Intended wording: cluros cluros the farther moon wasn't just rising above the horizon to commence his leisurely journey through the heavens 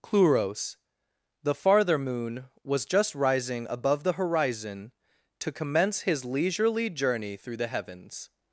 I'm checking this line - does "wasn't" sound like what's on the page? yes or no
no